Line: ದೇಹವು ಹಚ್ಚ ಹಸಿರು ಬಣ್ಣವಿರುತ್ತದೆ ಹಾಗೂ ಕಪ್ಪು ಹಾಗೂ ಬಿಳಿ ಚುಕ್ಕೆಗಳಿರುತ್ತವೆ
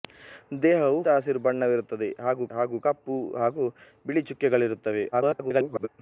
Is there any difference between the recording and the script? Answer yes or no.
yes